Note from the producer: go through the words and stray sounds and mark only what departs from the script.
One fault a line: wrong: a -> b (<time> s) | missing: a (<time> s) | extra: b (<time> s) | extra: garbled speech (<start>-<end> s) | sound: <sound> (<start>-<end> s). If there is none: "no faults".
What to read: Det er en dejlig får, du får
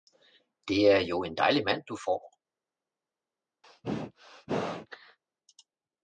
extra: jo (1.0 s)
wrong: får -> mand (1.6 s)
sound: sneeze (3.6-5.2 s)